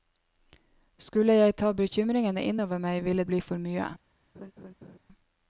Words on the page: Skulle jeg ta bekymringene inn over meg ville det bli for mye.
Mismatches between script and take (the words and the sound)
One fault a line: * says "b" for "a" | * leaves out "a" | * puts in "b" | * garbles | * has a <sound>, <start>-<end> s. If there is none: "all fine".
* leaves out "det"
* has a laugh, 4.3-5.0 s